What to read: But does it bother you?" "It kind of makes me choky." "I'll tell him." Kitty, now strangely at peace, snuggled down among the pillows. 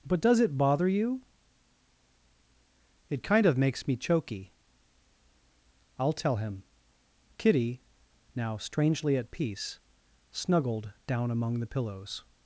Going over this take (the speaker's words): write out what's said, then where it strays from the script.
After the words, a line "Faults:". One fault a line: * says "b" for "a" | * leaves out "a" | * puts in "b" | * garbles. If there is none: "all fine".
But does it bother you?" "It kind of makes me choky." "I'll tell him." Kitty, now strangely at peace, snuggled down among the pillows.
Faults:
all fine